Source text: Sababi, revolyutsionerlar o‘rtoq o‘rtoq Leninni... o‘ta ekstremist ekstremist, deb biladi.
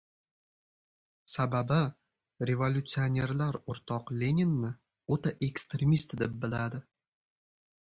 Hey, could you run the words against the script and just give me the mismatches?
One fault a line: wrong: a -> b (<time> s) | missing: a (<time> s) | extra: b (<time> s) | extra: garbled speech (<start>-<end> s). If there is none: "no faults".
missing: o‘rtoq (4.2 s)
missing: ekstremist (6.2 s)